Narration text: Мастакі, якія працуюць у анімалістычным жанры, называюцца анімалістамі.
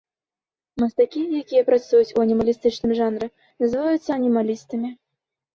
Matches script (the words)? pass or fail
pass